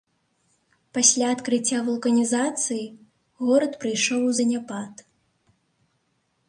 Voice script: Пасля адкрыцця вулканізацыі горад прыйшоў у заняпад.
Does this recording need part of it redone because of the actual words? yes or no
no